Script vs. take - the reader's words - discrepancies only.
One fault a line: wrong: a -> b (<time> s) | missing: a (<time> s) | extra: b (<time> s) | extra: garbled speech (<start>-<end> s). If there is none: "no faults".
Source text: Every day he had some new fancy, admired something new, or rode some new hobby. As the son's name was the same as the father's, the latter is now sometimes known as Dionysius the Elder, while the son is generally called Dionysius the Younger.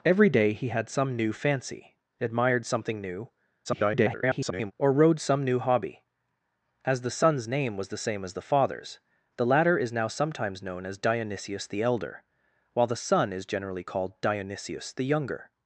extra: garbled speech (3.6-4.7 s)